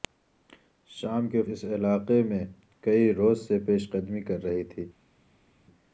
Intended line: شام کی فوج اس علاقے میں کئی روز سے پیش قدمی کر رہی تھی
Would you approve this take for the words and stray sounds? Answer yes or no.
no